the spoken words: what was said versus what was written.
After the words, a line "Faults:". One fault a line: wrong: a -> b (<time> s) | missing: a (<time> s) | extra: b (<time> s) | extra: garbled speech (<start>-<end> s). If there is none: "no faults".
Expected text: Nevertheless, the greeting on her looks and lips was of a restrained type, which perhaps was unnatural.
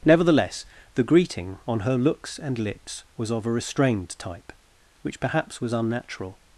Nevertheless, the greeting on her looks and lips was of a restrained type, which perhaps was unnatural.
Faults:
no faults